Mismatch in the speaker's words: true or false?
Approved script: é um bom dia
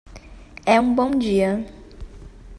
false